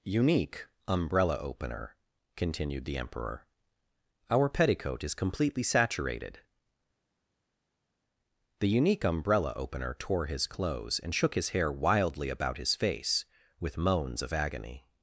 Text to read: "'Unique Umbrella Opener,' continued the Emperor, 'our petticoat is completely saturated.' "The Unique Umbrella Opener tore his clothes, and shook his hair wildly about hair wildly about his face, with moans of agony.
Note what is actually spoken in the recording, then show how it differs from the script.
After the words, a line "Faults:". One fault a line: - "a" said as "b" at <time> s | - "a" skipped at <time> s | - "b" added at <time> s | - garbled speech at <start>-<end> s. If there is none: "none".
"'Unique Umbrella Opener,' continued the Emperor, 'our petticoat is completely saturated.' "The Unique Umbrella Opener tore his clothes, and shook his hair wildly about his face, with moans of agony.
Faults:
- "hair wildly about" skipped at 12.6 s